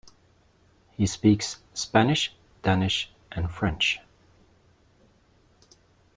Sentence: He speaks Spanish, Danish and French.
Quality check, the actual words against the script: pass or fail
pass